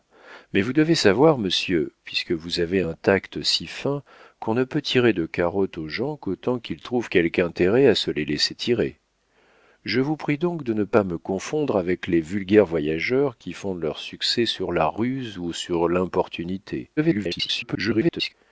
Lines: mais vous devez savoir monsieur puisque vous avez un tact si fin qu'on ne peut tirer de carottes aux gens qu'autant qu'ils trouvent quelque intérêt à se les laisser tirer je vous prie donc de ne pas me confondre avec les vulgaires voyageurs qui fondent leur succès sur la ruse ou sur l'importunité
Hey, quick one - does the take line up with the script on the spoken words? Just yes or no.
no